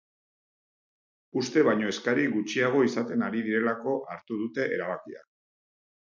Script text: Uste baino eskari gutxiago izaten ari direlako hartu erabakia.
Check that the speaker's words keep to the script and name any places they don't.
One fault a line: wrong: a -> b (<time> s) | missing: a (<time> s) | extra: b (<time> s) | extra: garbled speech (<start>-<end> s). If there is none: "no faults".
extra: dute (4.5 s)